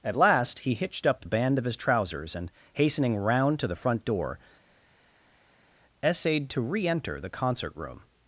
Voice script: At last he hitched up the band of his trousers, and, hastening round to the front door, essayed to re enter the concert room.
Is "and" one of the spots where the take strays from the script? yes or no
no